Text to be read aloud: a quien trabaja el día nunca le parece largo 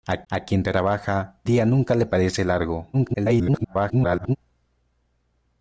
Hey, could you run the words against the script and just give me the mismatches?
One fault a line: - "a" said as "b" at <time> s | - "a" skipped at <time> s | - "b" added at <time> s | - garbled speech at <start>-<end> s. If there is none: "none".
- "a" added at 0.3 s
- "el" skipped at 1.4 s
- garbled speech at 2.9-4.4 s